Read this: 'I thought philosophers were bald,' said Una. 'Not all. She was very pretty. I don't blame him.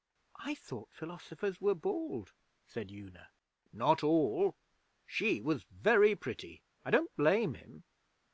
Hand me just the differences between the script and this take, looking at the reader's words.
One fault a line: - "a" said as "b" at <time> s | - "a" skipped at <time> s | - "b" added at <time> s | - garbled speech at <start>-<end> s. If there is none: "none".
none